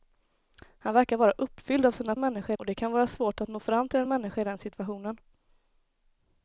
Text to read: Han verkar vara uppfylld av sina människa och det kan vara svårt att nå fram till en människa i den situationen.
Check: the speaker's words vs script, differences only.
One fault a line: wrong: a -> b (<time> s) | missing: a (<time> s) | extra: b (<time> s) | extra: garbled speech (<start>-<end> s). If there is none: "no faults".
no faults